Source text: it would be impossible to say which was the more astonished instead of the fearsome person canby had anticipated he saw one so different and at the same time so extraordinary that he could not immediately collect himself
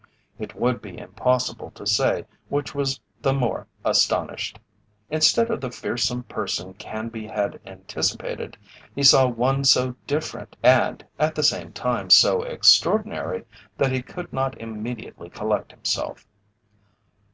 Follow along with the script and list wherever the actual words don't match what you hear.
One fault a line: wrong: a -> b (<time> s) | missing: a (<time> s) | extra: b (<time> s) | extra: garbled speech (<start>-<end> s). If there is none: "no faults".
no faults